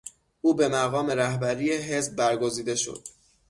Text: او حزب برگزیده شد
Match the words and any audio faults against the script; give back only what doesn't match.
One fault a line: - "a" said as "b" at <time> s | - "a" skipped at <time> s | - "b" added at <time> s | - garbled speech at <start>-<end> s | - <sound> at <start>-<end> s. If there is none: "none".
- "به مقام رهبری" added at 0.5 s